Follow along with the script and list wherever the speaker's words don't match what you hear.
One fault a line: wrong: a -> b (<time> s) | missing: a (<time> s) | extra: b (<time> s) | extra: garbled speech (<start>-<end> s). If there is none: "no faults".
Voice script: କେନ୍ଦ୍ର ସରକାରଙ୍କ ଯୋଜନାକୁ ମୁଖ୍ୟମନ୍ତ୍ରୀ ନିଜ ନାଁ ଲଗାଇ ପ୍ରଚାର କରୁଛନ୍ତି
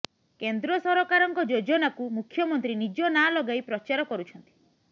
no faults